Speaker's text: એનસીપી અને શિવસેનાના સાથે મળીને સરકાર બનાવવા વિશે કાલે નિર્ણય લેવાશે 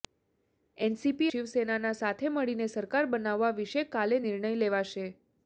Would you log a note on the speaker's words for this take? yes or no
yes